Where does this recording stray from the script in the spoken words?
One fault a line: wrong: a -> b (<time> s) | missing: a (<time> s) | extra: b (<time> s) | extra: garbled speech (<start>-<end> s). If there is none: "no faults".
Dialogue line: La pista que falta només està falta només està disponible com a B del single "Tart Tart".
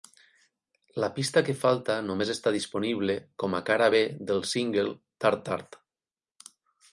missing: falta només està (2.5 s)
extra: cara (3.7 s)